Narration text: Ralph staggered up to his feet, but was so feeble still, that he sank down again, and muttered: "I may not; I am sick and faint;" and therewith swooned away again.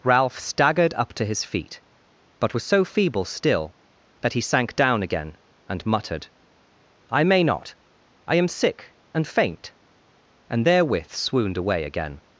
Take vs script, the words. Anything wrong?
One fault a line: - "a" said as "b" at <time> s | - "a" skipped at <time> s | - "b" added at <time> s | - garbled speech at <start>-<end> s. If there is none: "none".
none